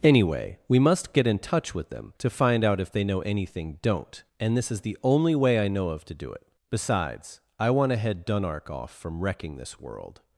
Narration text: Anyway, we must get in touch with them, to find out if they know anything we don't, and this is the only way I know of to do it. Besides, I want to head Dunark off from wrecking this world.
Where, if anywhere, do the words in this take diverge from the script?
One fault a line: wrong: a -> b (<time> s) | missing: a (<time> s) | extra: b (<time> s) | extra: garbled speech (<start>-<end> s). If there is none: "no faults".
missing: we (3.8 s)